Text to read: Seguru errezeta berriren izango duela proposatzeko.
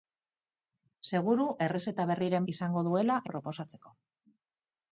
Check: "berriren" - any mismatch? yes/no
no